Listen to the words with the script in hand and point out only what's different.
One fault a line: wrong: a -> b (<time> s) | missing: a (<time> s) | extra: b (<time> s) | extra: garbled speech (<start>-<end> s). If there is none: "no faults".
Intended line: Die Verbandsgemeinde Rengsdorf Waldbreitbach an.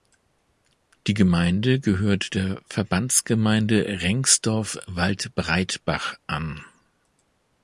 extra: Gemeinde gehört der (1.1 s)